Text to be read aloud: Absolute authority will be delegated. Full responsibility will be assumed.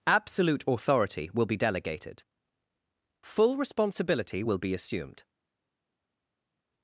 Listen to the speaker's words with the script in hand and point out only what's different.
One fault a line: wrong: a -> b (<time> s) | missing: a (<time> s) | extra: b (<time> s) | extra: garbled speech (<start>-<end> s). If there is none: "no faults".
no faults